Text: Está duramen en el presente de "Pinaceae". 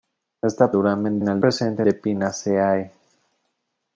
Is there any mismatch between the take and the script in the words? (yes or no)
no